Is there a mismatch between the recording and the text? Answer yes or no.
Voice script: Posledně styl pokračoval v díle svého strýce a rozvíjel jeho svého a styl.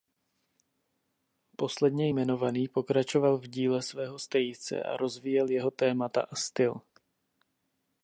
yes